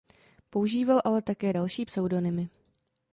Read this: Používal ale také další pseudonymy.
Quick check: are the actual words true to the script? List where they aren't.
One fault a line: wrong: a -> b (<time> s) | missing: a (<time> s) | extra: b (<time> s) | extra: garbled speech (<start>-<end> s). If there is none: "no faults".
no faults